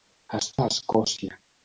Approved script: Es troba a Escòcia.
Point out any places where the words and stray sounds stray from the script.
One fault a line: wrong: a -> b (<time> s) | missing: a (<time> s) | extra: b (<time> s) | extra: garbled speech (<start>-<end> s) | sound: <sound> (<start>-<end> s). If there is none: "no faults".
missing: troba (0.5 s)